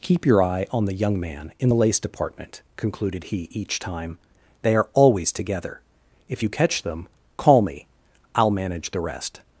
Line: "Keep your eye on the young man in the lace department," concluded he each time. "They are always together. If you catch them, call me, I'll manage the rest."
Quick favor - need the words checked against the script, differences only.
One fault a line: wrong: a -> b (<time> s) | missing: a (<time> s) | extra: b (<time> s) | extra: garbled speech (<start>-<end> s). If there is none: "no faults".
no faults